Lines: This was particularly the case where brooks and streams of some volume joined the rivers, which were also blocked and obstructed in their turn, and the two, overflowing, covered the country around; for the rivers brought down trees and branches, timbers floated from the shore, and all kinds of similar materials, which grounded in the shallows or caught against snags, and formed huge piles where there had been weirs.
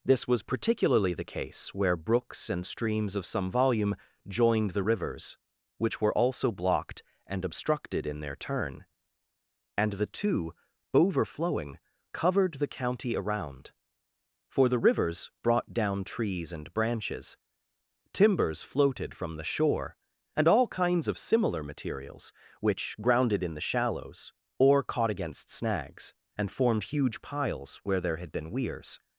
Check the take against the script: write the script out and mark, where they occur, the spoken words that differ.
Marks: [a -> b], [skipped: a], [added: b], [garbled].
This was particularly the case where brooks and streams of some volume joined the rivers, which were also blocked and obstructed in their turn, and the two, overflowing, covered the [country -> county] around; for the rivers brought down trees and branches, timbers floated from the shore, and all kinds of similar materials, which grounded in the shallows or caught against snags, and formed huge piles where there had been weirs.